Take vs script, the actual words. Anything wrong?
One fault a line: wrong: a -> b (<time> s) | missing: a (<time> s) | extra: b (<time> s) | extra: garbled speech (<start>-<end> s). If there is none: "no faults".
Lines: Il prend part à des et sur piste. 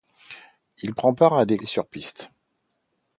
no faults